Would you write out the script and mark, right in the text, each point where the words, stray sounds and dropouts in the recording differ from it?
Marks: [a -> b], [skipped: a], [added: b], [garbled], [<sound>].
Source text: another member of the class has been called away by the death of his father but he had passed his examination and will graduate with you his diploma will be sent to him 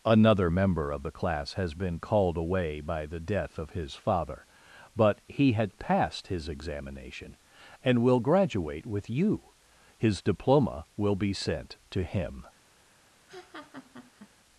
another member of the class has been called away by the death of his father but he had passed his examination and will graduate with you his diploma will be sent to him [laugh]